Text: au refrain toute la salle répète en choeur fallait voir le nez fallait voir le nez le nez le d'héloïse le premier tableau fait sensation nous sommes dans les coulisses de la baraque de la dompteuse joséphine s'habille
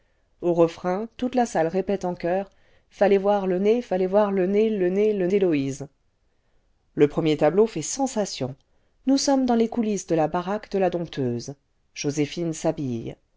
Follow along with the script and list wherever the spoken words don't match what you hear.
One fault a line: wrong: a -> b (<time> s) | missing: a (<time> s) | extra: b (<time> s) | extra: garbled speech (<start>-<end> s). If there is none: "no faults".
no faults